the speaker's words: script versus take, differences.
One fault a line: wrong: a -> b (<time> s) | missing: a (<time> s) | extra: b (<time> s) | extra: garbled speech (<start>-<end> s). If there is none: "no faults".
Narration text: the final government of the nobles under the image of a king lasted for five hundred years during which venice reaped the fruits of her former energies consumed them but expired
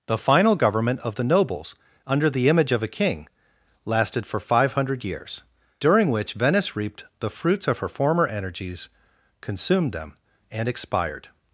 wrong: but -> and (10.5 s)